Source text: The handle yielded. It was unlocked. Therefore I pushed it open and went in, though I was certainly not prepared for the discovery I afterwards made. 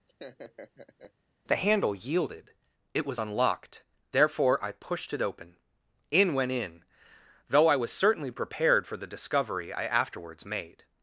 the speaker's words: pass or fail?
fail